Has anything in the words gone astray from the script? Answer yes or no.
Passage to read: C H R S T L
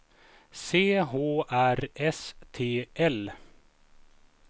no